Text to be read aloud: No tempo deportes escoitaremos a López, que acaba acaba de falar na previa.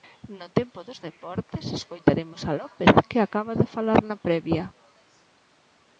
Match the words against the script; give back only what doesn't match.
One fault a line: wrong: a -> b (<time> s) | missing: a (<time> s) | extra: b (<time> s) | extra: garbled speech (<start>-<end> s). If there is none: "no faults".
extra: dos (0.9 s)
missing: acaba (3.5 s)